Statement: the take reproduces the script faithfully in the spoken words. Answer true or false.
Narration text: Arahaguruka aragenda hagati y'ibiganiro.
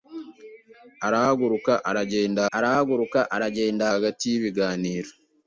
false